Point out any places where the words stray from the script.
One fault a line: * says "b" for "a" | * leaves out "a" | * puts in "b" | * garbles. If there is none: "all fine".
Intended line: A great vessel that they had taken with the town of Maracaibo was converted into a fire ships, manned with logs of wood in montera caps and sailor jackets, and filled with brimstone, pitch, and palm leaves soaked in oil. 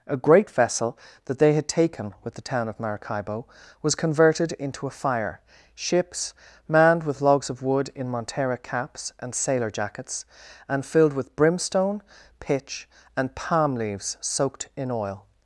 all fine